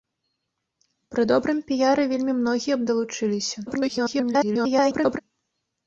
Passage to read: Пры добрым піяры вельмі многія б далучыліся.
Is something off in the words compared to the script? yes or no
yes